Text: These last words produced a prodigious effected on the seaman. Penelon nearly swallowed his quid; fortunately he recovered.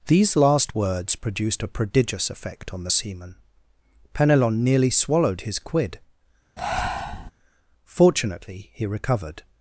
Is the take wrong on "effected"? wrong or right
wrong